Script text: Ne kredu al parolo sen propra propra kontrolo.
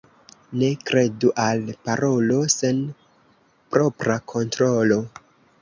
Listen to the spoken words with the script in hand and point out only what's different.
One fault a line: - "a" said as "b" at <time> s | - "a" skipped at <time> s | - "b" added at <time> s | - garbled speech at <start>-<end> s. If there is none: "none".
- "propra" skipped at 4.2 s